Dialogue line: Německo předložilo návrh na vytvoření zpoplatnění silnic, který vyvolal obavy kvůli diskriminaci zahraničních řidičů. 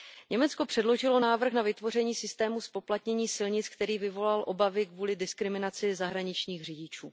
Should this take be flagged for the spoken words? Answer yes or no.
yes